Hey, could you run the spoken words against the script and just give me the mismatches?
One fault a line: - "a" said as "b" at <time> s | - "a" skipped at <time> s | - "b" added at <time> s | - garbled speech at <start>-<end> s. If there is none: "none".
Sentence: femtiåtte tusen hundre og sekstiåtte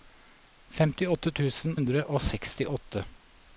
none